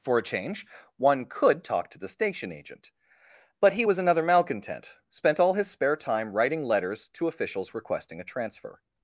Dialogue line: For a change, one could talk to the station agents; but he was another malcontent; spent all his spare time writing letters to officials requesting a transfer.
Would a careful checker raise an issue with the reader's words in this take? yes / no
yes